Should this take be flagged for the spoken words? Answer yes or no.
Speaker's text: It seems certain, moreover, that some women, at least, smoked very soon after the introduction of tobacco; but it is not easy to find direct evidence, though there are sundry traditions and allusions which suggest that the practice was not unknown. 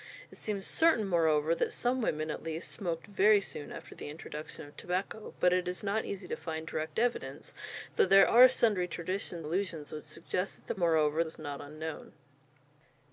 yes